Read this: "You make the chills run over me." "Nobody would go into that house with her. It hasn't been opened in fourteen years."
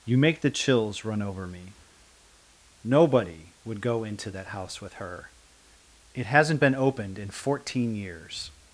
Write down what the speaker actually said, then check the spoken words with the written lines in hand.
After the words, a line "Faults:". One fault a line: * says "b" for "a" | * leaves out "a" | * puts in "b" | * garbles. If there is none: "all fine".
"You make the chills run over me." "Nobody would go into that house with her. It hasn't been opened in fourteen years."
Faults:
all fine